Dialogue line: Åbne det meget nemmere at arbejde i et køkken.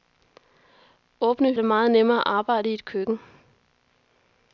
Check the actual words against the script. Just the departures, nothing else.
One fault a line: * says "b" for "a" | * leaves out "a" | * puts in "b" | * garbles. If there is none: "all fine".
all fine